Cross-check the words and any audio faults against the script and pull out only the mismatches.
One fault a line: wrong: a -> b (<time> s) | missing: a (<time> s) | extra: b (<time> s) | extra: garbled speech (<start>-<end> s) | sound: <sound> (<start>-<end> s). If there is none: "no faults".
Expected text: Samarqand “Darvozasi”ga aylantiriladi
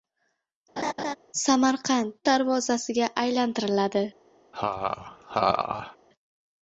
sound: laugh (0.8-1.2 s)
sound: laugh (4.5-6.0 s)